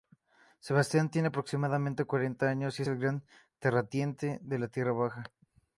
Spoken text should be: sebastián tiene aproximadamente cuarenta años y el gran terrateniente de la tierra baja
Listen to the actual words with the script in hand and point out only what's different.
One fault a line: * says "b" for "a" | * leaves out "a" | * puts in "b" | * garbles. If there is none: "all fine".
all fine